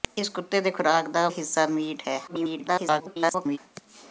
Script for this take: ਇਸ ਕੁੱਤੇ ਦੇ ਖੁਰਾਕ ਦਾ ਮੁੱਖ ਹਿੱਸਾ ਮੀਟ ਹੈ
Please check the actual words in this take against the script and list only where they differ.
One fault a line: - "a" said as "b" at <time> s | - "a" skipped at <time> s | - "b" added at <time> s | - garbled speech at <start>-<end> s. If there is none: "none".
- "ਮੁੱਖ" skipped at 1.3 s
- garbled speech at 2.3-3.6 s